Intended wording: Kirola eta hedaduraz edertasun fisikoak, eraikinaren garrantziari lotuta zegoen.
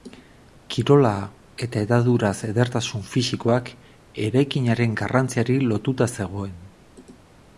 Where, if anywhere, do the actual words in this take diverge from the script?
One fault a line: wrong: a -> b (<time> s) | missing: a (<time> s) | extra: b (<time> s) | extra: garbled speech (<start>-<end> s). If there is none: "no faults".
no faults